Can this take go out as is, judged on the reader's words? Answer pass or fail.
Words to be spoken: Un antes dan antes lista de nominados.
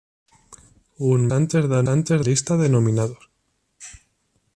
pass